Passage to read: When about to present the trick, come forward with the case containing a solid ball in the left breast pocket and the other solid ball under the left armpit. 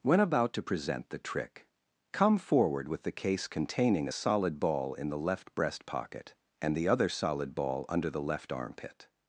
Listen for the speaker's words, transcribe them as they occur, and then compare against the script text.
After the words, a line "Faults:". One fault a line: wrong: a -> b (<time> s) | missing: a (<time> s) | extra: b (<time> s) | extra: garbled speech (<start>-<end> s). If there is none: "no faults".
When about to present the trick, come forward with the case containing a solid ball in the left breast pocket and the other solid ball under the left armpit.
Faults:
no faults